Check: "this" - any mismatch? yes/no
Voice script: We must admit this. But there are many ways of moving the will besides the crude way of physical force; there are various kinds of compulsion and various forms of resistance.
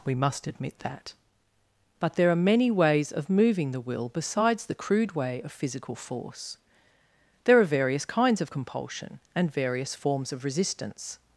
yes